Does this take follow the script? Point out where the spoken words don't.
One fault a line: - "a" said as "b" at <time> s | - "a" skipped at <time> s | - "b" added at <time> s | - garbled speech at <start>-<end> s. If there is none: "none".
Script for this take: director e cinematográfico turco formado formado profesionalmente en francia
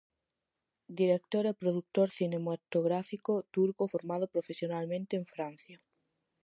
- "produtor" added at 1.6 s
- "formado" skipped at 4.3 s